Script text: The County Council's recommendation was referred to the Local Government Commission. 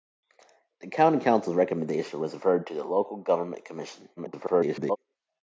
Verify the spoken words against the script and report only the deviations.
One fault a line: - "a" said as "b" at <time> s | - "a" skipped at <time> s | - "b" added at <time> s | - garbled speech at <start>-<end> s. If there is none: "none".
- garbled speech at 4.2-5.0 s